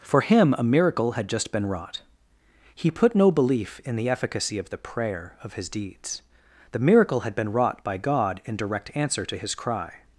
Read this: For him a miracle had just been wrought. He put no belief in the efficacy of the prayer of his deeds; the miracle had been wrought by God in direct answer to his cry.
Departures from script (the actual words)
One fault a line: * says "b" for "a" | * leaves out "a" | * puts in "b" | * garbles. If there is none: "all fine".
all fine